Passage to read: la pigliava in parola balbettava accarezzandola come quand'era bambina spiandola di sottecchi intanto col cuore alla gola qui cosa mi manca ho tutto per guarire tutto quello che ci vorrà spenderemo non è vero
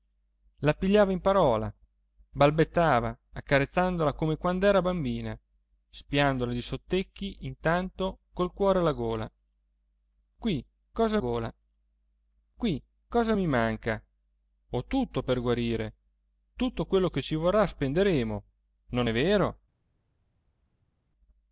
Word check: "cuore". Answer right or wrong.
right